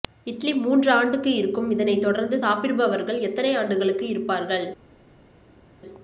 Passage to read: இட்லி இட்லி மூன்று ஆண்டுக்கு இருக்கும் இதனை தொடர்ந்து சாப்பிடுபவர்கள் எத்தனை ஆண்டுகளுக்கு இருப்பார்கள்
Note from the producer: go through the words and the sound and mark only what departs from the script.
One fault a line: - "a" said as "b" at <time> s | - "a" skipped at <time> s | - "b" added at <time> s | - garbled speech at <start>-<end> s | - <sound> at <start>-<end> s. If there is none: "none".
- "இட்லி" skipped at 0.5 s